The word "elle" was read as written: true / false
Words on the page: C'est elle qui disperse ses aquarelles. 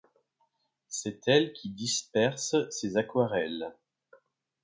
true